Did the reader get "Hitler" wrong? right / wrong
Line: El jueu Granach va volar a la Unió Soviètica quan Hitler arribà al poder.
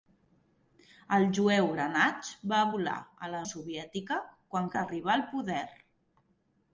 wrong